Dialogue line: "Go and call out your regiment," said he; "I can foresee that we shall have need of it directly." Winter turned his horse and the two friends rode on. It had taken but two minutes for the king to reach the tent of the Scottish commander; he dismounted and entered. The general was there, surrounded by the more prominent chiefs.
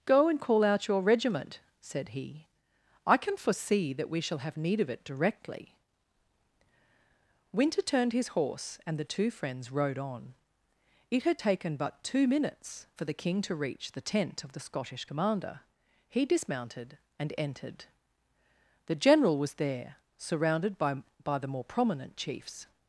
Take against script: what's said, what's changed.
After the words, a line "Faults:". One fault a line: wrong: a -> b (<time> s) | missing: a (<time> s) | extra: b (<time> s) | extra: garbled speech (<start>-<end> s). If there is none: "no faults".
"Go and call out your regiment," said he; "I can foresee that we shall have need of it directly." Winter turned his horse and the two friends rode on. It had taken but two minutes for the king to reach the tent of the Scottish commander; he dismounted and entered. The general was there, surrounded by by the more prominent chiefs.
Faults:
extra: by (21.2 s)